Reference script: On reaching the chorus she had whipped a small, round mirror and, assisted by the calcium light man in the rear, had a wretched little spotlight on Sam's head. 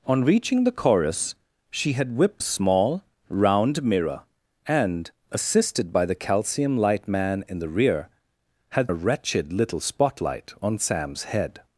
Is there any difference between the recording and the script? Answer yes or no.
no